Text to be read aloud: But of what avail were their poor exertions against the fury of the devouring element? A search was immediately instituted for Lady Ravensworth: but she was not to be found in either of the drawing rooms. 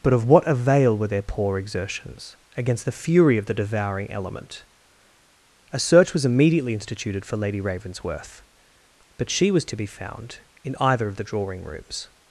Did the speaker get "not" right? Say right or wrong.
wrong